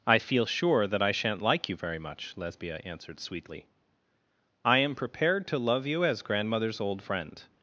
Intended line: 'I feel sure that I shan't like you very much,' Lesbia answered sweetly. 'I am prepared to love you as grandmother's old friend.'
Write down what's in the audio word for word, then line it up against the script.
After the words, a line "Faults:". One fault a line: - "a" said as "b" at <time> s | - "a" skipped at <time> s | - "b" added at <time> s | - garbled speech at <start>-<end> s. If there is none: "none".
'I feel sure that I shan't like you very much,' Lesbia answered sweetly. 'I am prepared to love you as grandmother's old friend.'
Faults:
none